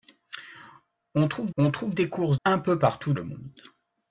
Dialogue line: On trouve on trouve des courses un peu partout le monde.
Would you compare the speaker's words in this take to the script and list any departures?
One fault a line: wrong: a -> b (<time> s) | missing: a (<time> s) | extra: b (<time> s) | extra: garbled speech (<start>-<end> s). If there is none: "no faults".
no faults